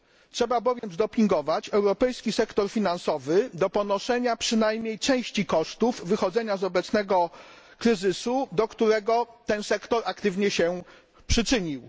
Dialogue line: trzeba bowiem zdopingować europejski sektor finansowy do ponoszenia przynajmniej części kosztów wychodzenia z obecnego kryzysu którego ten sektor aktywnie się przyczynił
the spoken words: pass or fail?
fail